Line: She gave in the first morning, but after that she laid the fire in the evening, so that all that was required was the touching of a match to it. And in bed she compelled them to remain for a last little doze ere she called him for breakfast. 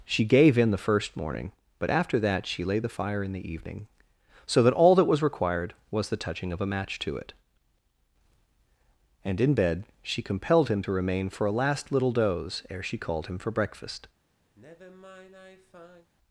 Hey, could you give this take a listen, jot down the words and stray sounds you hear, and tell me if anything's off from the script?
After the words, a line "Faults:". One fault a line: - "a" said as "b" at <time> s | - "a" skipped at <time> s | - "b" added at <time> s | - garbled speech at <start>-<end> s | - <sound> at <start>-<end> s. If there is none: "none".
She gave in the first morning, but after that she laid the fire in the evening, so that all that was required was the touching of a match to it. And in bed she compelled him to remain for a last little doze ere she called him for breakfast.
Faults:
- "them" said as "him" at 10.7 s
- sigh at 14.5-16.1 s